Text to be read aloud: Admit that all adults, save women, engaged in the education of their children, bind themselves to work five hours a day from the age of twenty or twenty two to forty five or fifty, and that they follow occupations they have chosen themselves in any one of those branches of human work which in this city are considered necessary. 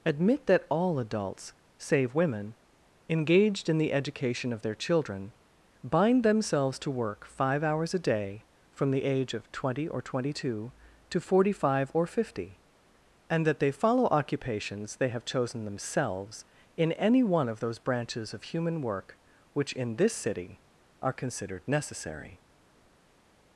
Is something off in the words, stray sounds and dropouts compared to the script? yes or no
no